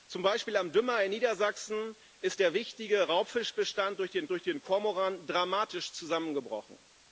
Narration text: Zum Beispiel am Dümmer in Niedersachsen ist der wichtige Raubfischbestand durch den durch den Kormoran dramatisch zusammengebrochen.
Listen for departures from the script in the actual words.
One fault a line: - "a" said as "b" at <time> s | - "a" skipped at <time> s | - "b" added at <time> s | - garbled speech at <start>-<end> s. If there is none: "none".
none